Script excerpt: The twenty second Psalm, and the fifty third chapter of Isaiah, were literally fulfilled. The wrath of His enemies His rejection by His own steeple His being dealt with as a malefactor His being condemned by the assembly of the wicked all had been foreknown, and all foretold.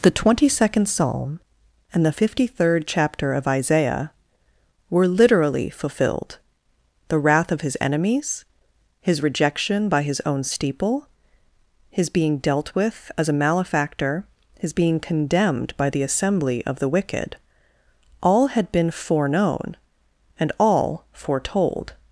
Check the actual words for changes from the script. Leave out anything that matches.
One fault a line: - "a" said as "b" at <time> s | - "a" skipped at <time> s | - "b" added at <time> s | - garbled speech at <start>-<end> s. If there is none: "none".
none